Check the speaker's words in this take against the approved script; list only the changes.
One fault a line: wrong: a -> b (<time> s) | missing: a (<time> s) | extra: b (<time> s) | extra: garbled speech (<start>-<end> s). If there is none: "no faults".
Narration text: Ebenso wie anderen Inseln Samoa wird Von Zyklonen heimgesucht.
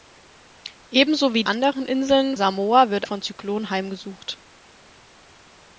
no faults